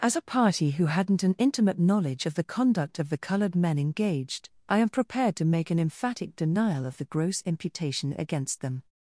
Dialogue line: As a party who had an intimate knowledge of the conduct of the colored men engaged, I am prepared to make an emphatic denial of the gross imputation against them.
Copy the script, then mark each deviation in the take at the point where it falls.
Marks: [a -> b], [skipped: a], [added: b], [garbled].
As a party who [had -> hadn't] an intimate knowledge of the conduct of the colored men engaged, I am prepared to make an emphatic denial of the gross imputation against them.